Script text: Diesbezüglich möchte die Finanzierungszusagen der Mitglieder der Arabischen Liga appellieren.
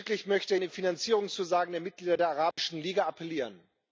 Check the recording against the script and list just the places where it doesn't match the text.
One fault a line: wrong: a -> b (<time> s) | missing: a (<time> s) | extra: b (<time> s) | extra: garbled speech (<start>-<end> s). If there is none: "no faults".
no faults